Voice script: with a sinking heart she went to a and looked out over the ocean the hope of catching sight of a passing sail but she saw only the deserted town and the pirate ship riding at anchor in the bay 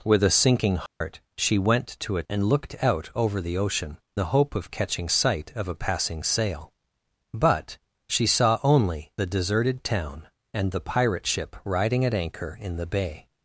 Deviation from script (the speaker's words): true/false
false